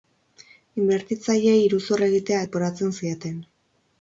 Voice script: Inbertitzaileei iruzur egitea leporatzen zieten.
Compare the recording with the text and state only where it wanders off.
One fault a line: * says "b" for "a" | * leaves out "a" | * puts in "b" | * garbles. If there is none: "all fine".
all fine